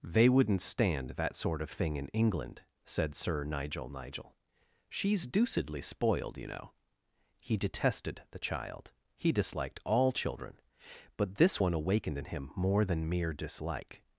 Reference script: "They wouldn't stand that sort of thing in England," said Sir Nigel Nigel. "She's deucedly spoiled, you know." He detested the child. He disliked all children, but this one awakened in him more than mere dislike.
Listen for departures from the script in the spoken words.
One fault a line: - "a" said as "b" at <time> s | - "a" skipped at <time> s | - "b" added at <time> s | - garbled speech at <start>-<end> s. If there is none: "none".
none